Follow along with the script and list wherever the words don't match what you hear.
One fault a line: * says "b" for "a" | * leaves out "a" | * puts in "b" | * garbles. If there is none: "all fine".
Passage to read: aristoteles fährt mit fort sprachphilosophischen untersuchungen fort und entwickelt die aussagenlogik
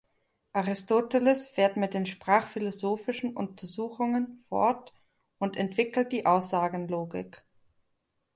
* says "den" for "fort"